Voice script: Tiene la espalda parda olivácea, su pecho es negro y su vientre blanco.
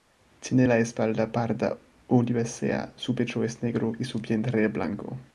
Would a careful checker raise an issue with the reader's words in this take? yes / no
no